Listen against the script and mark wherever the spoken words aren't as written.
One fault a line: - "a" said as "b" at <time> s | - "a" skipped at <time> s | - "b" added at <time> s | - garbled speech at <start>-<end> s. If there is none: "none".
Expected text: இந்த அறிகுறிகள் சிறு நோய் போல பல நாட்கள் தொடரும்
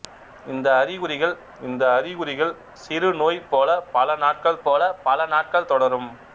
- "இந்த அறிகுறிகள்" added at 1.6 s
- "போல பல நாட்கள்" added at 4.6 s